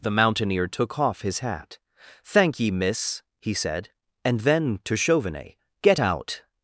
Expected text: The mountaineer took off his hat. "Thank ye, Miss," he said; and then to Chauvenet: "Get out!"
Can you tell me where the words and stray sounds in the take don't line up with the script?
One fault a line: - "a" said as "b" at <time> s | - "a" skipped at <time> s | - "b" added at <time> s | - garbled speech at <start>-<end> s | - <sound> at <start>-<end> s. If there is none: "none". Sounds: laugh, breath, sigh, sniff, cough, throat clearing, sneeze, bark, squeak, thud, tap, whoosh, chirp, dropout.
none